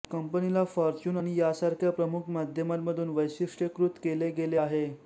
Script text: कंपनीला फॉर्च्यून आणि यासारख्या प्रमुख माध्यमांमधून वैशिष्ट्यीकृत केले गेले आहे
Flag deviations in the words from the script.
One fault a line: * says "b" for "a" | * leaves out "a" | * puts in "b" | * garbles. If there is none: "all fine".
all fine